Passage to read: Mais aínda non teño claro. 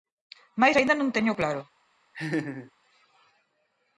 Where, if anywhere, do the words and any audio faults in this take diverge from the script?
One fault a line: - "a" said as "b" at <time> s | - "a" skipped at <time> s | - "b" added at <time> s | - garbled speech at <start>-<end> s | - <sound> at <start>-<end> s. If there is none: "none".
- laugh at 2.1-2.7 s